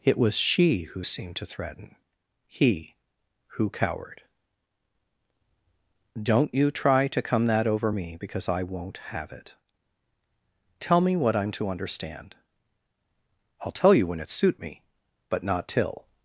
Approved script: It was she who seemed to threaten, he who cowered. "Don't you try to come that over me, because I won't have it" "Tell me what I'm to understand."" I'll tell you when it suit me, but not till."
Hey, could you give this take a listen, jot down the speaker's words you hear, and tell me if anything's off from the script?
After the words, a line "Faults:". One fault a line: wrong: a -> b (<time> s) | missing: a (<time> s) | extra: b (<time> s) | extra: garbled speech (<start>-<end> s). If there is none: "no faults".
It was she who seemed to threaten, he who cowered. "Don't you try to come that over me, because I won't have it" "Tell me what I'm to understand."" I'll tell you when it suit me, but not till."
Faults:
no faults